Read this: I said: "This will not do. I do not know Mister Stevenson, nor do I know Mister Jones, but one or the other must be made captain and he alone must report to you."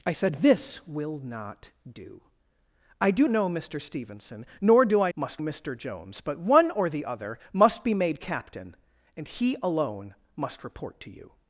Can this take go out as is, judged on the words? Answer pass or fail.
fail